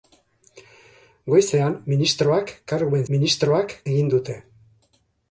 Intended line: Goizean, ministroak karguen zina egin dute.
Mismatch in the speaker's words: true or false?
true